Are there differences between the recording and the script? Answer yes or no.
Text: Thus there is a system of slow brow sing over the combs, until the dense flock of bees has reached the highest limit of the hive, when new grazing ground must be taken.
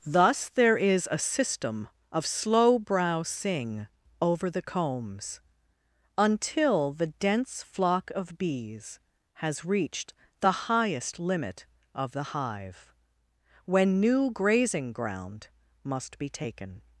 no